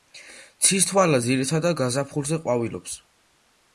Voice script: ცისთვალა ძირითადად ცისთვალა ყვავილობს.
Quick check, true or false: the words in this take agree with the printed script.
false